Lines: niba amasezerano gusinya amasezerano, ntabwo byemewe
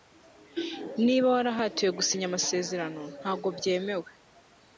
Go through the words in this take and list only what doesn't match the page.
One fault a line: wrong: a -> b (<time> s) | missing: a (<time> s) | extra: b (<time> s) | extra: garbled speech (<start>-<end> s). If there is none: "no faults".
wrong: amasezerano -> warahatiwe (1.4 s)